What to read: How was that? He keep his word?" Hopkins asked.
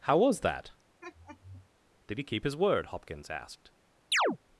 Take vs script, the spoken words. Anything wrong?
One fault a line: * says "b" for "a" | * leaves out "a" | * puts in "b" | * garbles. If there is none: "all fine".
* puts in "Did"